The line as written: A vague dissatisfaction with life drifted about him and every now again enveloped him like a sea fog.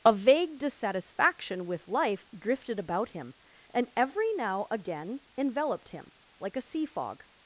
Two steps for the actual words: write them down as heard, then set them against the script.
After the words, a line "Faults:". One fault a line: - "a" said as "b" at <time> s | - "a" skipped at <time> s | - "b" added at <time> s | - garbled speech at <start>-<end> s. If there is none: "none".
A vague dissatisfaction with life drifted about him and every now again enveloped him like a sea fog.
Faults:
none